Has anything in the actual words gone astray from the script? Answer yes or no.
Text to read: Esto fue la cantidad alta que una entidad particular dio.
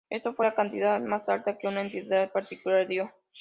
yes